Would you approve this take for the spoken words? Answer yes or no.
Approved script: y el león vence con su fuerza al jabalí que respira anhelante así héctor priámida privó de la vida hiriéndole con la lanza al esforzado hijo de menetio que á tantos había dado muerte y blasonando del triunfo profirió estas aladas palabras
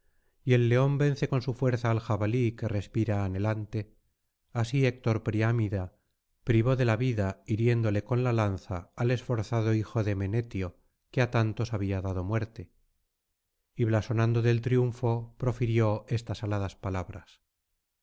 yes